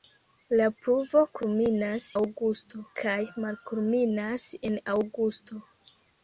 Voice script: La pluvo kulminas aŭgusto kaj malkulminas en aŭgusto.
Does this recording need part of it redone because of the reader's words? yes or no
no